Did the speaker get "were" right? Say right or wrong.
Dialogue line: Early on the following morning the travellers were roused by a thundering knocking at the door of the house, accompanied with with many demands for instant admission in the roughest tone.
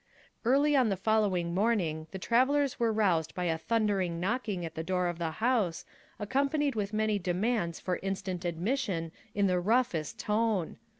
right